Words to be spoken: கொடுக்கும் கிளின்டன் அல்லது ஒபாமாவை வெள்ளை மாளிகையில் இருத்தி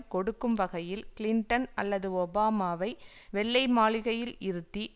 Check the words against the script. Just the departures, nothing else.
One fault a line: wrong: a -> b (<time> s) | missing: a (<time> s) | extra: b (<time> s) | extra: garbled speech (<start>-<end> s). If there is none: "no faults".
extra: வகையில் (0.6 s)